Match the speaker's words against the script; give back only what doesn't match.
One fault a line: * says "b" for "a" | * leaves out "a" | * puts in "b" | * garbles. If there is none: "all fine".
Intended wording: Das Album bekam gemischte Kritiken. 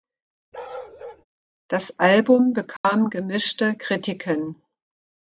all fine